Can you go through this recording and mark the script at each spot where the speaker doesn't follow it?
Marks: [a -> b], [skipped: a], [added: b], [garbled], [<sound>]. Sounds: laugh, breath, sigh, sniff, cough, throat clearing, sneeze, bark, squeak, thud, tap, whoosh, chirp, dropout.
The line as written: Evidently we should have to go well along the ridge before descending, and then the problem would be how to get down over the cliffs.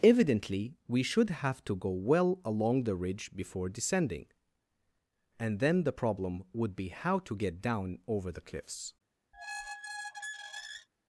Evidently we should have to go well along the ridge before descending, and then the problem would be how to get down over the cliffs. [squeak]